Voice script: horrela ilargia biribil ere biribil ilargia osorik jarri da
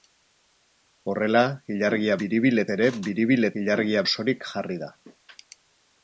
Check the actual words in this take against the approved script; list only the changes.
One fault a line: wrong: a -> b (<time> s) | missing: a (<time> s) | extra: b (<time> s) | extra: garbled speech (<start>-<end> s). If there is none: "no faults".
no faults